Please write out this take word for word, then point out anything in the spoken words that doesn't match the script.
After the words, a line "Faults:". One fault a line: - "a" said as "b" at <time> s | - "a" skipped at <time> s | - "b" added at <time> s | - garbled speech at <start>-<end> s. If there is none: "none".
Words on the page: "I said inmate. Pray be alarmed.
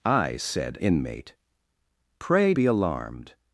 "I said inmate. Pray be alarmed.
Faults:
none